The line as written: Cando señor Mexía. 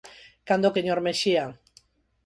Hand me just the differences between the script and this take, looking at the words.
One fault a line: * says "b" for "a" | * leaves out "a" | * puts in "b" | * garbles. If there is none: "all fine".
all fine